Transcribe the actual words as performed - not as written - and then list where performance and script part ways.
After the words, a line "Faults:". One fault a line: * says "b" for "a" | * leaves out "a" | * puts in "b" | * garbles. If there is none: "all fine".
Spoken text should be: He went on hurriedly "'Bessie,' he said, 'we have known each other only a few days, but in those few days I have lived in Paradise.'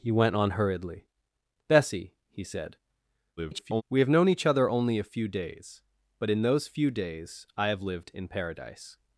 He went on hurriedly "'Bessie,' he said, [garbled] 'we have known each other only a few days, but in those few days I have lived in Paradise.'
Faults:
* garbles